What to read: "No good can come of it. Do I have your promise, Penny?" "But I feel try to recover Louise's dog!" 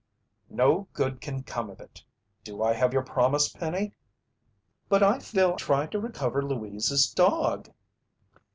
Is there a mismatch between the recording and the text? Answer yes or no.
no